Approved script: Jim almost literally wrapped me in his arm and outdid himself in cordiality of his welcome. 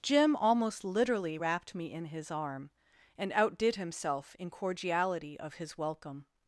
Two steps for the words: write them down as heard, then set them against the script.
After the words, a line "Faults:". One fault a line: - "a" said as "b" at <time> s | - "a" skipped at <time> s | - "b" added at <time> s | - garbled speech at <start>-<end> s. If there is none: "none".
Jim almost literally wrapped me in his arm and outdid himself in cordiality of his welcome.
Faults:
none